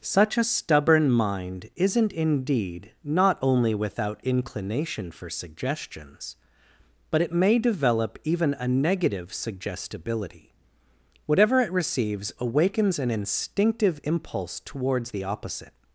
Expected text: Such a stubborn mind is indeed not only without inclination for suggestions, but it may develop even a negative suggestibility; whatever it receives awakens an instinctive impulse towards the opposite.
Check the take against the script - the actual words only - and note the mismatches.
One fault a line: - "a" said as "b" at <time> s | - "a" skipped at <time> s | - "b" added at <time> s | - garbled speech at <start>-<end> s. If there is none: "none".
- "is" said as "isn't" at 1.8 s